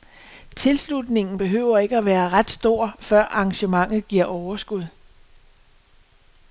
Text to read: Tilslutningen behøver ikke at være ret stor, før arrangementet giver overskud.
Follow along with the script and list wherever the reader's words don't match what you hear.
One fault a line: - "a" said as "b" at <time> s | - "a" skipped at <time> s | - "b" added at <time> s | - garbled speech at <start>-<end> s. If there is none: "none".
none